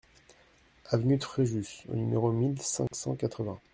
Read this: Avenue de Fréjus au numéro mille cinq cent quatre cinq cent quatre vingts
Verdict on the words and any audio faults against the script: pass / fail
fail